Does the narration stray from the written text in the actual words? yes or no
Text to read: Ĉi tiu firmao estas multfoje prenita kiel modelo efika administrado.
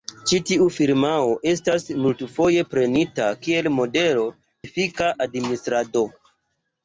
no